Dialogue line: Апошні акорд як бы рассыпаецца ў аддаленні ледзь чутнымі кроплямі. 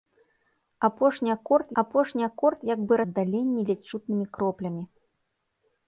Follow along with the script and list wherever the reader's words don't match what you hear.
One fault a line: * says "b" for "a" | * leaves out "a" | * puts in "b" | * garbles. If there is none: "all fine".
* puts in "апошні акорд"
* leaves out "рассыпаецца ў"